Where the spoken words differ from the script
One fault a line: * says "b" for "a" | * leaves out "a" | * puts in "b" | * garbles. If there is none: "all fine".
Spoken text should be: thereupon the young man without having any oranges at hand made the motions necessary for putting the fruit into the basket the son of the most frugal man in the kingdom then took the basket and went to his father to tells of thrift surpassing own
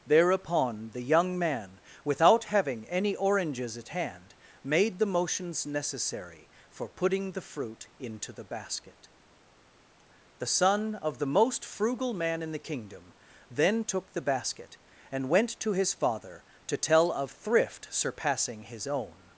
* says "tell" for "tells"
* puts in "his"